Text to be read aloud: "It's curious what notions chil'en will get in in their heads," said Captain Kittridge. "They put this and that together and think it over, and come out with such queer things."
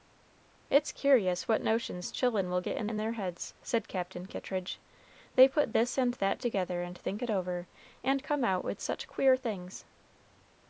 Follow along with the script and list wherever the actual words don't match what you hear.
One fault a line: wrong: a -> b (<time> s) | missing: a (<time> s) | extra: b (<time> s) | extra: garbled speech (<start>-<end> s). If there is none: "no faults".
no faults